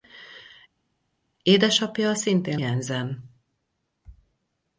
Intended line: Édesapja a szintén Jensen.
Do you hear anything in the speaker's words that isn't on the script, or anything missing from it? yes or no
no